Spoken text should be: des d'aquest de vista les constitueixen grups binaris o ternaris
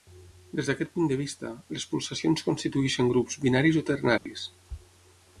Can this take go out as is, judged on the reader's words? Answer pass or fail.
fail